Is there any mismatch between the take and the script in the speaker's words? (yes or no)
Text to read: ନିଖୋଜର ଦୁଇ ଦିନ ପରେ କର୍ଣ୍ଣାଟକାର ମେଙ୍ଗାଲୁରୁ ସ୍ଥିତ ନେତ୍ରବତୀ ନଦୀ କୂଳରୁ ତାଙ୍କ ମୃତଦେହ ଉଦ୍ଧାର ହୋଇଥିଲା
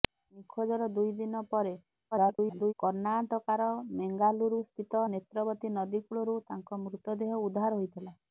yes